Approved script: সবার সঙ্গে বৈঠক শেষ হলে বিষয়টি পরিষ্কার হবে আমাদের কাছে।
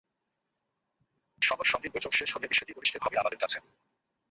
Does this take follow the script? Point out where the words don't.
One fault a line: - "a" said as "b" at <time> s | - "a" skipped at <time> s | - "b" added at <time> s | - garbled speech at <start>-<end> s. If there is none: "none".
none